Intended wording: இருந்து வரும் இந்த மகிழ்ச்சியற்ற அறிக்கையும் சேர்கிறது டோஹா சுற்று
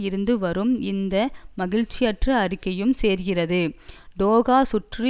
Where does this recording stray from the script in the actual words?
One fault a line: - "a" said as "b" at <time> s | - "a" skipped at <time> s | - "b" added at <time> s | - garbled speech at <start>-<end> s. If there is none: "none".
none